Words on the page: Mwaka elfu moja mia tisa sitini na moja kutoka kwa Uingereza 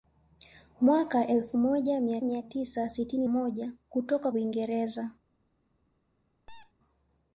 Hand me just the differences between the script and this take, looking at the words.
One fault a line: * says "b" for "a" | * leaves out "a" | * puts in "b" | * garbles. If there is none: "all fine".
* puts in "mia"
* leaves out "na"
* leaves out "kwa"